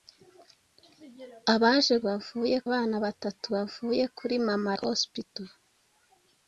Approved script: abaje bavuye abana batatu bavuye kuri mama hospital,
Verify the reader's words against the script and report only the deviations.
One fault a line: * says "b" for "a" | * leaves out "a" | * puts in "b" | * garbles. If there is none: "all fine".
all fine